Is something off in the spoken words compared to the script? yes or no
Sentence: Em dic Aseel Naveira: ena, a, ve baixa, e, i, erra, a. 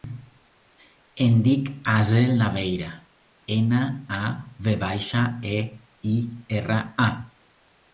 no